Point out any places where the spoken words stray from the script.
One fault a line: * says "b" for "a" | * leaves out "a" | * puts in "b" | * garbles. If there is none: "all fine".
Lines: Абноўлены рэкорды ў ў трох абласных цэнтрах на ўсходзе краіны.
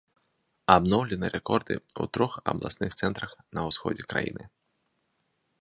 * leaves out "ў"